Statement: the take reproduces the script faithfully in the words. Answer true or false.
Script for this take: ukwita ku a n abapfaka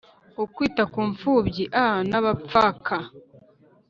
false